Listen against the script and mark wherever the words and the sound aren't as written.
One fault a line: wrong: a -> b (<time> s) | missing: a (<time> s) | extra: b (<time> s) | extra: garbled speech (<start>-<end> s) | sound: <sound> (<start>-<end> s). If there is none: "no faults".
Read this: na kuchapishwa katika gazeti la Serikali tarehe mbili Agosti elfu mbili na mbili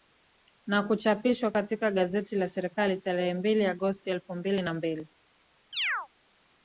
sound: chirp (5.7-6.1 s)